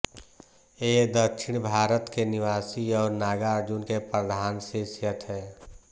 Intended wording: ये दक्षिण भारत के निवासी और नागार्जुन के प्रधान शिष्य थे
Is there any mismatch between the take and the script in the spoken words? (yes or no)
no